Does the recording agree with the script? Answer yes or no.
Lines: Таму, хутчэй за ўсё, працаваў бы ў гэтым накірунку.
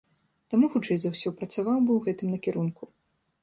yes